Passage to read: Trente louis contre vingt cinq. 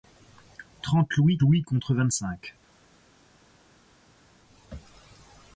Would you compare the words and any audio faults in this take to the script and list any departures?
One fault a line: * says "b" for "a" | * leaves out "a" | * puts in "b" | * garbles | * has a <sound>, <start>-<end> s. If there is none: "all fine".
* puts in "louis"